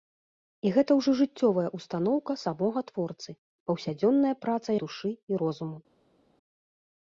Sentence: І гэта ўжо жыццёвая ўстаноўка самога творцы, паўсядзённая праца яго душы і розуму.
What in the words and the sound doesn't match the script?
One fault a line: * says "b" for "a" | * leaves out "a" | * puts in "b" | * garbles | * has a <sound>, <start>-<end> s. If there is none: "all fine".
* leaves out "яго"